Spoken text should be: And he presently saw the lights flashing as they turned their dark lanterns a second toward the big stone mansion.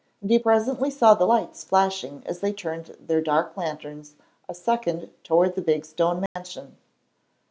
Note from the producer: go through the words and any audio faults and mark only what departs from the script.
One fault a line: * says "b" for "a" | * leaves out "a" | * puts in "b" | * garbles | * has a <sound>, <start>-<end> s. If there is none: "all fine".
* has a dropout, 6.3-6.4 s